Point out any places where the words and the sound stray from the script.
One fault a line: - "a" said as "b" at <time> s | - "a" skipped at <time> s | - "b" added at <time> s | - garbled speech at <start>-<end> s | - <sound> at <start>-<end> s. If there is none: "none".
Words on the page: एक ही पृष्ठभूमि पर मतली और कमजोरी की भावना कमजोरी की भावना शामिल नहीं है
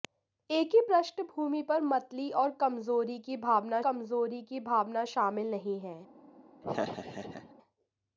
- laugh at 6.6-7.5 s